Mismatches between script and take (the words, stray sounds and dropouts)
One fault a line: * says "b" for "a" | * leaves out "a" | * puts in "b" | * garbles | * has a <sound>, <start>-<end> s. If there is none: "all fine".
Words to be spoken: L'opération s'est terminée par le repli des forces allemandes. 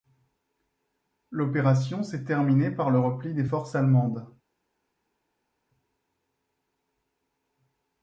all fine